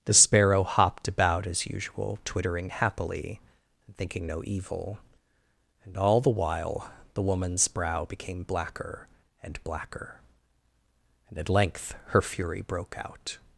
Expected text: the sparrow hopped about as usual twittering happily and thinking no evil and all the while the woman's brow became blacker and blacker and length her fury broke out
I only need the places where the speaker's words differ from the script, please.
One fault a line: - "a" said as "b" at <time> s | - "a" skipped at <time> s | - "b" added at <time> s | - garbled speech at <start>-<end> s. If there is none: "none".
- "at" added at 11.4 s